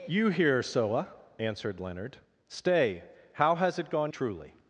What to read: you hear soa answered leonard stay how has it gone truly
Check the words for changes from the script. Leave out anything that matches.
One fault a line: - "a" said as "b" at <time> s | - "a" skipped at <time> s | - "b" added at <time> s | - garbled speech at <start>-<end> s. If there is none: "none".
none